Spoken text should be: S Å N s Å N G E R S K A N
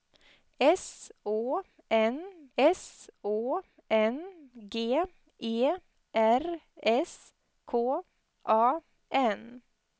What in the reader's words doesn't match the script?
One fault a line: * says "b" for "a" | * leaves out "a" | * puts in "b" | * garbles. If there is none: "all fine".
all fine